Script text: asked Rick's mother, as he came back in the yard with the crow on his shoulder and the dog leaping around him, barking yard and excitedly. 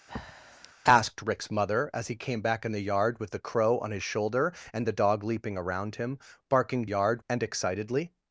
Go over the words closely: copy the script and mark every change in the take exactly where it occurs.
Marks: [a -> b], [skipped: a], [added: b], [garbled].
asked Rick's mother, as he came back in the yard with the crow on his shoulder and the dog leaping around him, barking yard and excitedly.